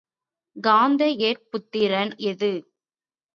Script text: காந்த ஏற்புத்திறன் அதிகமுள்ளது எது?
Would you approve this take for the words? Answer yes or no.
no